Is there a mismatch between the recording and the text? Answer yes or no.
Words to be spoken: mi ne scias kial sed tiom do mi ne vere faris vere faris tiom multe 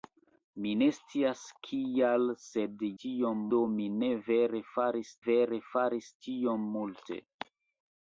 no